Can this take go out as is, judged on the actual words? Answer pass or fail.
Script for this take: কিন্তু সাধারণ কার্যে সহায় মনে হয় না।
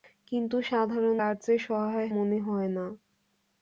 pass